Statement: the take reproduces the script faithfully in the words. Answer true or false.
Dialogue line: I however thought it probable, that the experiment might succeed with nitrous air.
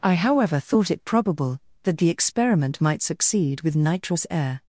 true